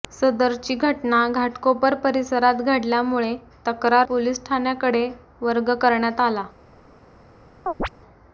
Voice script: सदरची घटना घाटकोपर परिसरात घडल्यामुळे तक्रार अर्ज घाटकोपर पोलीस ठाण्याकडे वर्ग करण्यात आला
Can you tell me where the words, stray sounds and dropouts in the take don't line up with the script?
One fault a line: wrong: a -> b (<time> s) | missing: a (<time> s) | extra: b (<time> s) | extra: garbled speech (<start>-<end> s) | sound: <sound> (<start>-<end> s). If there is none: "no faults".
missing: अर्ज घाटकोपर (4.1 s)
sound: chirp (7.7-7.9 s)